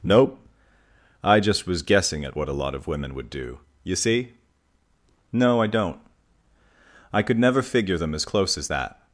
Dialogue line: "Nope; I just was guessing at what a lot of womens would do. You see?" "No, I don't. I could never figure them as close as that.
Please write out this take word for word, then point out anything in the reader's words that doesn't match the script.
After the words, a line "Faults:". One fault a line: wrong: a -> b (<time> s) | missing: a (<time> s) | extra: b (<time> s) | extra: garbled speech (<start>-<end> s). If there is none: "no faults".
"Nope; I just was guessing at what a lot of women would do. You see?" "No, I don't. I could never figure them as close as that.
Faults:
wrong: womens -> women (2.9 s)